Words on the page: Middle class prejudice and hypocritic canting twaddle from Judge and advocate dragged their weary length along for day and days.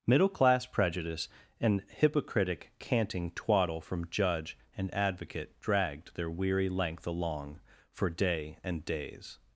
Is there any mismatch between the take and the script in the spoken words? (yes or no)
no